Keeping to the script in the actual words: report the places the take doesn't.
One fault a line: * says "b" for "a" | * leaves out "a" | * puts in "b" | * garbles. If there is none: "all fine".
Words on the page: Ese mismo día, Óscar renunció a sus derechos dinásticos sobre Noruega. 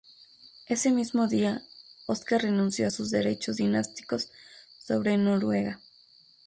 all fine